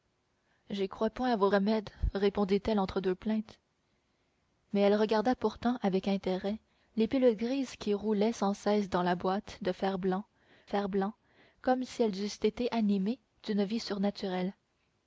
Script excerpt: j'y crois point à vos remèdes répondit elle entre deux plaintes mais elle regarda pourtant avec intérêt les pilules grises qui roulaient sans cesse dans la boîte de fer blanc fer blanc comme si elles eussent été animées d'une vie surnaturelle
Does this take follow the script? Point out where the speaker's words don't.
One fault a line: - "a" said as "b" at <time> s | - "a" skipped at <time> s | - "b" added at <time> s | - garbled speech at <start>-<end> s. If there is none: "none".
none